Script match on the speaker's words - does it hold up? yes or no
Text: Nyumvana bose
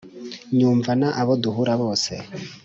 no